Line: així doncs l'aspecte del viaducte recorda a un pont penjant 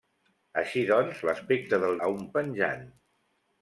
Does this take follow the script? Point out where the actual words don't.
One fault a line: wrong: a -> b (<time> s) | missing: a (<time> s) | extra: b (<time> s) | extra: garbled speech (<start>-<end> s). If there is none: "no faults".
missing: viaducte recorda (1.9 s)
missing: pont (2.2 s)